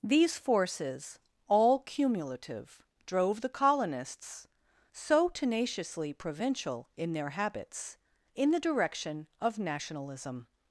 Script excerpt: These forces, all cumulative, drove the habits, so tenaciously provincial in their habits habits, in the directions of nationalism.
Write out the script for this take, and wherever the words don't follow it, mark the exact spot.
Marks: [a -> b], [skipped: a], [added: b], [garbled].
These forces, all cumulative, drove the [habits, -> colonists] so tenaciously provincial in their habits [skipped: habits,] in the [directions -> direction] of nationalism.